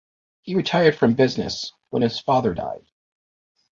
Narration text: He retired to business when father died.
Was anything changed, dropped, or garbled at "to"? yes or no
yes